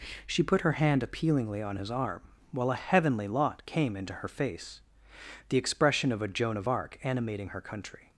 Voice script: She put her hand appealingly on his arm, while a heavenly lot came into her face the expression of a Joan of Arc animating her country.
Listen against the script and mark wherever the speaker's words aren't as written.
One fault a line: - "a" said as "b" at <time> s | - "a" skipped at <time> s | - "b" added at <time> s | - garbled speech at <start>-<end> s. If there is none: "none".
none